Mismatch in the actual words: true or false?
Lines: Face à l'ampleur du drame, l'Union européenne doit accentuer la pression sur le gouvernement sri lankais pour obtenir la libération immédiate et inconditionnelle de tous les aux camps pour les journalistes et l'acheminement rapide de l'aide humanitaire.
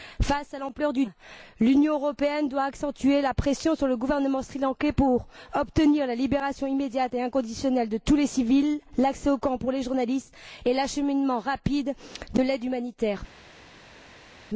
true